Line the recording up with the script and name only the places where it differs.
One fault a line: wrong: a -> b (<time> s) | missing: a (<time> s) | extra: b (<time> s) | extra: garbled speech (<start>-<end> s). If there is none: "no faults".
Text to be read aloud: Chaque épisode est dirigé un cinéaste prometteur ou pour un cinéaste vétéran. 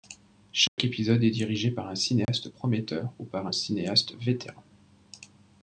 extra: par (1.7 s)
wrong: pour -> par (3.2 s)